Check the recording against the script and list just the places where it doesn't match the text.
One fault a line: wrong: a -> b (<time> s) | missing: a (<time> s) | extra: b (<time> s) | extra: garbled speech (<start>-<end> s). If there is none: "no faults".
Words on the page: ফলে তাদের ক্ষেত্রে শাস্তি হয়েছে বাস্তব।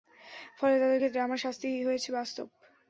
extra: আমার (1.2 s)